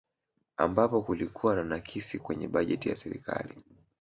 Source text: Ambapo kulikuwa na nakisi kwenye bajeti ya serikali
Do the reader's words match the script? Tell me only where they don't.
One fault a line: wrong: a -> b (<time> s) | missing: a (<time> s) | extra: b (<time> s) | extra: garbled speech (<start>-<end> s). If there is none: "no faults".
no faults